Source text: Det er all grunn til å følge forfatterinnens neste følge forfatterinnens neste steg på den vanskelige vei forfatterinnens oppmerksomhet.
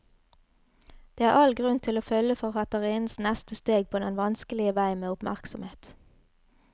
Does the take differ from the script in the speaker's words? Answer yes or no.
yes